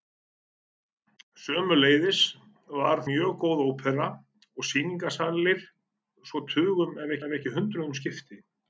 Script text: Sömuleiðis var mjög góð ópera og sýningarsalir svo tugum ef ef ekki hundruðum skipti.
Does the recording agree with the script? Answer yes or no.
yes